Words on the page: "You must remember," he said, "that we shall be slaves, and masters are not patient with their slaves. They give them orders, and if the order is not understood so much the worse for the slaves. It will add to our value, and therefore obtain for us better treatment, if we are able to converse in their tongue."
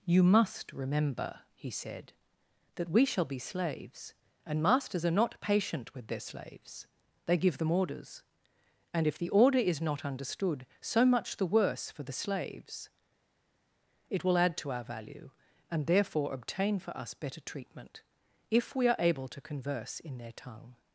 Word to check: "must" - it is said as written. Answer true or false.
true